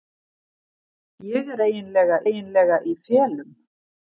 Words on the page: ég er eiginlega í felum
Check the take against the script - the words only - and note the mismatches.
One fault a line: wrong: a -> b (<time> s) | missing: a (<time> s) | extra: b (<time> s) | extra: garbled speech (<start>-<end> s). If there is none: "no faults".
extra: eiginlega (2.3 s)